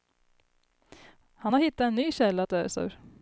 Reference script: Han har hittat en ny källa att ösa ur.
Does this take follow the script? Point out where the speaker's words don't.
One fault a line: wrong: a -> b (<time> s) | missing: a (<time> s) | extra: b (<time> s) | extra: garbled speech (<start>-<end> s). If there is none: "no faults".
no faults